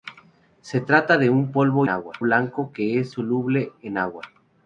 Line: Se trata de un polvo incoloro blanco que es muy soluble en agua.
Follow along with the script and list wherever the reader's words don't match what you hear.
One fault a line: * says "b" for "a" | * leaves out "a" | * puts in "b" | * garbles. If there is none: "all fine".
* says "agua" for "incoloro"
* leaves out "muy"